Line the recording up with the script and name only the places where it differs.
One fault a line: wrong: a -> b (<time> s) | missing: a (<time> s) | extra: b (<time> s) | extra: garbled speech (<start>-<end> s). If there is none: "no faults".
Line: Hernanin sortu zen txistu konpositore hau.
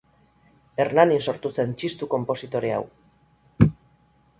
no faults